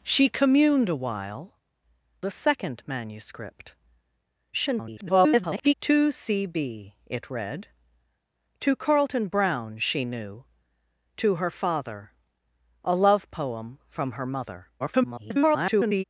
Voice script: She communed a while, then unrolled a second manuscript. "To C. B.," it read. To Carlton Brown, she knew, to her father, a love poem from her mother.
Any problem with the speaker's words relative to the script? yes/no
yes